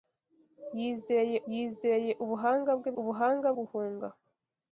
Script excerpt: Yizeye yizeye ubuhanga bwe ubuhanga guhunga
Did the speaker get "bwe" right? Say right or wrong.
right